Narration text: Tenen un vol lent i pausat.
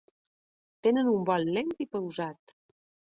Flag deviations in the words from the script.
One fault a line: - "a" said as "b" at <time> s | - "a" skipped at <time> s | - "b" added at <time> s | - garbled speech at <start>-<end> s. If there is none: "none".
none